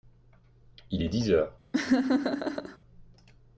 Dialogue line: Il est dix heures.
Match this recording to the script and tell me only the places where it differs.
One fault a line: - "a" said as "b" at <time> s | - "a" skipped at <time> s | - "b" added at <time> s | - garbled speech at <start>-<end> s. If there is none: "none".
none